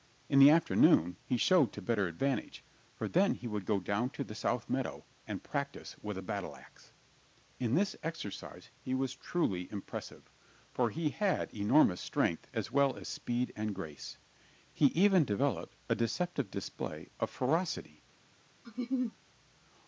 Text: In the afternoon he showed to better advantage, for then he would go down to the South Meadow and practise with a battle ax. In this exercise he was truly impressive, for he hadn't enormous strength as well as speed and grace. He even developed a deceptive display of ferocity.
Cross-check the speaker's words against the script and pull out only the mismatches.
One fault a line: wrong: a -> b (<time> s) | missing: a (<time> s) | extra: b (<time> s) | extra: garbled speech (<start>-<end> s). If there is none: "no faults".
wrong: hadn't -> had (11.1 s)